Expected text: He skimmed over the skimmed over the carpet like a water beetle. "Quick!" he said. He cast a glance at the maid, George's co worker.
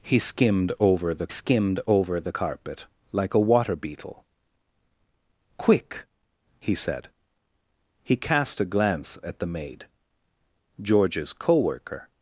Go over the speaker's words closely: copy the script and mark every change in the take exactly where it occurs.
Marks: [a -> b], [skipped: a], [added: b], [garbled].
He skimmed over the skimmed over the carpet like a water beetle. "Quick!" he said. He cast a glance at the maid, George's co worker.